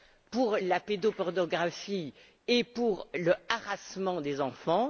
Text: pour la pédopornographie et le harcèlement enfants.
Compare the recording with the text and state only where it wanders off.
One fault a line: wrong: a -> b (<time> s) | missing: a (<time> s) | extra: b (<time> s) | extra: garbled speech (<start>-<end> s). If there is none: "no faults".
extra: pour (2.6 s)
extra: des (4.2 s)